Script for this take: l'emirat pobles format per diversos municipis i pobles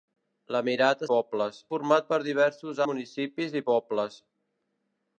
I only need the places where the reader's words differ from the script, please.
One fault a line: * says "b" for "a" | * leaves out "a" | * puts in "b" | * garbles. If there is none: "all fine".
all fine